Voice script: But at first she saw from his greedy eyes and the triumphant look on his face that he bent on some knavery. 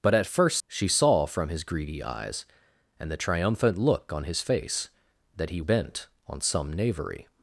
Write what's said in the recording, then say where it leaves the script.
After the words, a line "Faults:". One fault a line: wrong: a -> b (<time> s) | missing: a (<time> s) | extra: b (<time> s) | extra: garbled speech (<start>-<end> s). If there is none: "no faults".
But at first she saw from his greedy eyes and the triumphant look on his face that he bent on some knavery.
Faults:
no faults